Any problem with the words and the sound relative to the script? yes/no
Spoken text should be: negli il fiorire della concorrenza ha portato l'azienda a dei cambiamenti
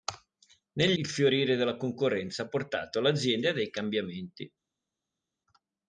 no